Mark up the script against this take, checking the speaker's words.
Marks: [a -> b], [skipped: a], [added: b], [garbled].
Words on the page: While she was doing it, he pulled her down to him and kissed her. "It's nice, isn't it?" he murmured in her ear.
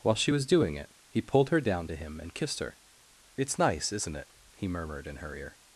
While she was doing it, he pulled her down to him and kissed her. "It's nice, isn't it?" he murmured in her ear.